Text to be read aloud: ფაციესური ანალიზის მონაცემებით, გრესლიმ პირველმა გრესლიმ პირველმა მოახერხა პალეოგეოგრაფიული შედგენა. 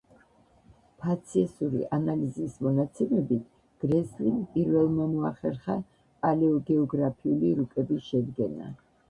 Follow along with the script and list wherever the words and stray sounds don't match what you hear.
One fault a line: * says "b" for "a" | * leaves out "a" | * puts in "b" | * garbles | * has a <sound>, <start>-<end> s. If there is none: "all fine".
* leaves out "გრესლიმ პირველმა"
* puts in "რუკების"